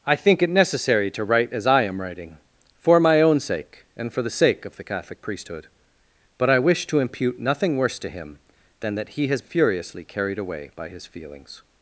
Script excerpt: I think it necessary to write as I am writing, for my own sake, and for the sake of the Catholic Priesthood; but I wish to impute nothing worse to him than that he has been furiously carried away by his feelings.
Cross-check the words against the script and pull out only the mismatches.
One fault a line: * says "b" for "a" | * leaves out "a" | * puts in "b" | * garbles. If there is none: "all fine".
* leaves out "been"